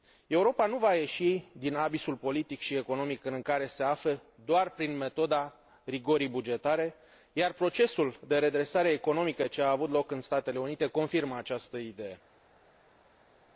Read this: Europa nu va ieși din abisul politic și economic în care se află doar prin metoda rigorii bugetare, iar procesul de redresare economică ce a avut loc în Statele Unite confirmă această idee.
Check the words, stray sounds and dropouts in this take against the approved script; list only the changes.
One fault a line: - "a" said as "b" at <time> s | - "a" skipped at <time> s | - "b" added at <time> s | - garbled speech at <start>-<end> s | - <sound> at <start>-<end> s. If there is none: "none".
none